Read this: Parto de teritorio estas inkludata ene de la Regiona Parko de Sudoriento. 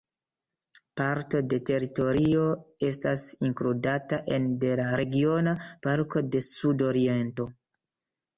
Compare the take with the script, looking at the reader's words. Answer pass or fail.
pass